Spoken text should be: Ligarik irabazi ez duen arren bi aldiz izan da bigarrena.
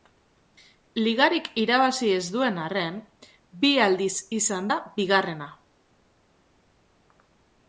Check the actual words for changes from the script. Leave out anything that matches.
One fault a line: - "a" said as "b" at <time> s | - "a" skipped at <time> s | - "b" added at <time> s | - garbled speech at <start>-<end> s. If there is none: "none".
none